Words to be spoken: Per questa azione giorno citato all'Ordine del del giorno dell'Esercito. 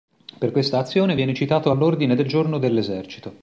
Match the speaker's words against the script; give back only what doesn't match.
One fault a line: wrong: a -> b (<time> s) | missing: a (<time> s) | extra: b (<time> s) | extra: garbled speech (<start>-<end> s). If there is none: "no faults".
wrong: giorno -> viene (1.1 s)
missing: del (2.3 s)